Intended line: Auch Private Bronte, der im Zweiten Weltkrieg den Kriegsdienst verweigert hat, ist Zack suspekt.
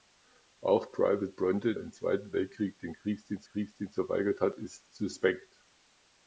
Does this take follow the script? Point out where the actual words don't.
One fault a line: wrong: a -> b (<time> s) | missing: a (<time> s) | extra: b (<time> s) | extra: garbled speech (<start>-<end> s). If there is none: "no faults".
missing: der (1.8 s)
extra: Kriegsdienst (3.4 s)
missing: Zack (4.9 s)